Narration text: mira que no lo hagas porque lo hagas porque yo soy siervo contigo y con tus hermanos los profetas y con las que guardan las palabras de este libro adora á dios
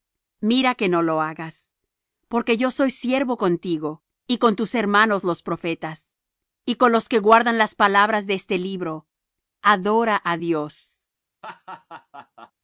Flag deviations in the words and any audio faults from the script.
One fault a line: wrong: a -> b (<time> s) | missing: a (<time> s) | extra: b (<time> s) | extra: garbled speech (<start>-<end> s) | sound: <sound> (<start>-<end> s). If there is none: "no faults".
missing: lo hagas porque (2.6 s)
wrong: las -> los (6.9 s)
sound: laugh (11.4-12.5 s)